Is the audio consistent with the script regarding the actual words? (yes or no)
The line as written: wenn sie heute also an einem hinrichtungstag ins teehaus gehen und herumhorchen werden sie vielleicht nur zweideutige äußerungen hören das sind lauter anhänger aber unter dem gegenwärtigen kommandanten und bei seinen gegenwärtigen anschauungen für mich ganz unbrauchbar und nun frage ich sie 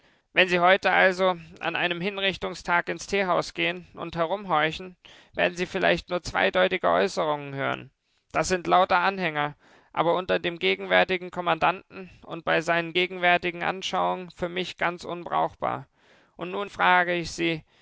yes